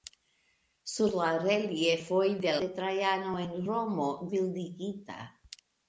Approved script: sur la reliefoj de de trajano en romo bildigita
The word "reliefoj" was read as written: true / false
true